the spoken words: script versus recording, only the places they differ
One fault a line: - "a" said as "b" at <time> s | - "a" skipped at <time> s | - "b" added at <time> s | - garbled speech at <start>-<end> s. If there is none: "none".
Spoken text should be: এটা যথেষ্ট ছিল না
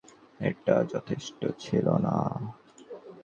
none